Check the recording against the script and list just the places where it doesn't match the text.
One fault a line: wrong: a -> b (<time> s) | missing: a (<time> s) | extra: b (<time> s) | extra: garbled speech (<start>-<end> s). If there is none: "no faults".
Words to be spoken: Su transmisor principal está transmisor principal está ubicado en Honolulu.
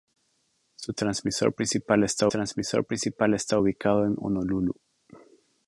no faults